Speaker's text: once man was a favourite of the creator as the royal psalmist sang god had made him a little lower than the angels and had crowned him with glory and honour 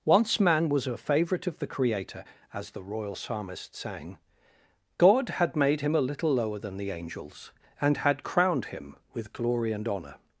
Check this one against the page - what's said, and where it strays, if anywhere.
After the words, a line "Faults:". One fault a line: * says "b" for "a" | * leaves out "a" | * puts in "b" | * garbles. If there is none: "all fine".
once man was a favourite of the creator as the royal psalmist sang god had made him a little lower than the angels and had crowned him with glory and honour
Faults:
all fine